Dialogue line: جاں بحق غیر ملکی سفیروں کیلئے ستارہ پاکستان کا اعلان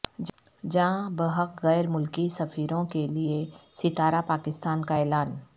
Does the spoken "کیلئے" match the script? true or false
true